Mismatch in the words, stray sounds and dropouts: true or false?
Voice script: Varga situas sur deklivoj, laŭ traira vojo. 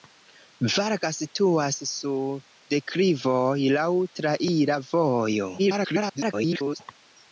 true